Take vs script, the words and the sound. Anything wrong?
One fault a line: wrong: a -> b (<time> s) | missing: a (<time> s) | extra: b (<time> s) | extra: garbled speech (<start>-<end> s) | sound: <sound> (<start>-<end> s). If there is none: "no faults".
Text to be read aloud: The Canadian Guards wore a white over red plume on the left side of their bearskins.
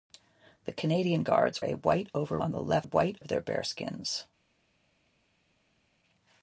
missing: wore (1.6 s)
missing: red plume (2.4 s)
wrong: side -> white (2.8 s)